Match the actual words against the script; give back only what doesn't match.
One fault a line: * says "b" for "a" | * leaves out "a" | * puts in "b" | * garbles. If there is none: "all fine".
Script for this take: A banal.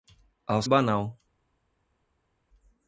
all fine